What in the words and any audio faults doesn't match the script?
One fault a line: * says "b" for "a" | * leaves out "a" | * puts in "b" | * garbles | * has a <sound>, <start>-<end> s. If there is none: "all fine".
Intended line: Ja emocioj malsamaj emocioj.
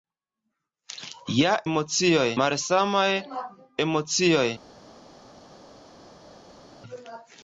all fine